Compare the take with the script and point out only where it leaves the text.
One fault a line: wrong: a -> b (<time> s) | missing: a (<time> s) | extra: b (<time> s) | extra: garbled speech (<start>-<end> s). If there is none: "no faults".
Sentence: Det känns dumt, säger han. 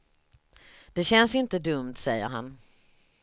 extra: inte (1.4 s)